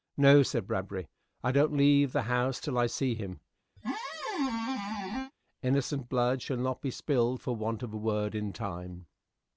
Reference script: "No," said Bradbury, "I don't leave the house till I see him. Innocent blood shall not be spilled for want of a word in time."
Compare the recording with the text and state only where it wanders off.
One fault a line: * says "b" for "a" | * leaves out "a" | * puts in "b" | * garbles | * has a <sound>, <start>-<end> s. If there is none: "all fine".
* has a squeak, 3.8-5.3 s